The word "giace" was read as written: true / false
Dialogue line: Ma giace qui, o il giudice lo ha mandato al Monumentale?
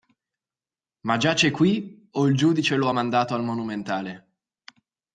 true